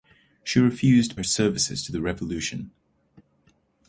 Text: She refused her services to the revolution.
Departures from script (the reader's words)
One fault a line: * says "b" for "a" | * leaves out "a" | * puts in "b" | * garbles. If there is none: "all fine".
all fine